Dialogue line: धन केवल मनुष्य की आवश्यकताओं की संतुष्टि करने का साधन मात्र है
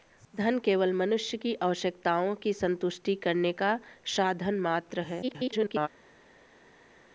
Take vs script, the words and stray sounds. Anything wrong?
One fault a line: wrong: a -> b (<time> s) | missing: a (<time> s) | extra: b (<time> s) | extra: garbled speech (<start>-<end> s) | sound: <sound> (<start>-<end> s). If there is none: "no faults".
extra: garbled speech (5.2-5.9 s)